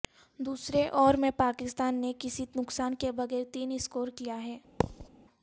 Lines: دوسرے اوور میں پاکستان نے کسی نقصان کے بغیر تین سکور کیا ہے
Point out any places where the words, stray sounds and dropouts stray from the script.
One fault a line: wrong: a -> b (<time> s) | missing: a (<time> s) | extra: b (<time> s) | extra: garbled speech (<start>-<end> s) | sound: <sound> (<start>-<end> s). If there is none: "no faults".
sound: thud (4.8-5.1 s)